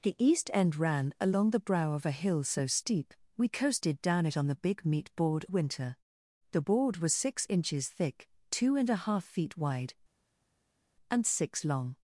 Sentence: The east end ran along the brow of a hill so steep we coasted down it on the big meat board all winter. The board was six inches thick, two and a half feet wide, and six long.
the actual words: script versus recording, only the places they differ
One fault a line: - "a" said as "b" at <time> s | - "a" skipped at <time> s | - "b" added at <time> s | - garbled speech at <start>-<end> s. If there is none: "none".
- "all" skipped at 5.5 s